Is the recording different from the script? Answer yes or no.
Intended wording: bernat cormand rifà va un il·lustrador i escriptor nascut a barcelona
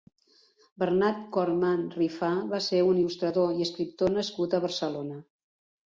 yes